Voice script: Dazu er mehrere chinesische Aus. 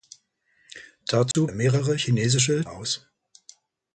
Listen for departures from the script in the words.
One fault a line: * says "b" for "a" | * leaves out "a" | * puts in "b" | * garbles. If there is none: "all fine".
all fine